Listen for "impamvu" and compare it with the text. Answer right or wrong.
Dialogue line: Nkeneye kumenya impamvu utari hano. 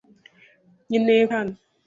wrong